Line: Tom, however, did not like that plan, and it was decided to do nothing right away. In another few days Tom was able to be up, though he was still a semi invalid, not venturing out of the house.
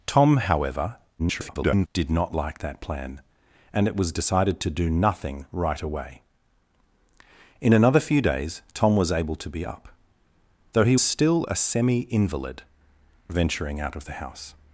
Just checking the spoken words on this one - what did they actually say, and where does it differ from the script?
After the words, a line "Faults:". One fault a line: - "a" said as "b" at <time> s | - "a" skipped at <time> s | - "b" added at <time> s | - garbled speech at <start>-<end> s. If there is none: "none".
Tom, however, [garbled] did not like that plan, and it was decided to do nothing right away. In another few days Tom was able to be up, though he still a semi invalid, venturing out of the house.
Faults:
- garbled speech at 1.2-1.9 s
- "was" skipped at 11.0 s
- "not" skipped at 12.6 s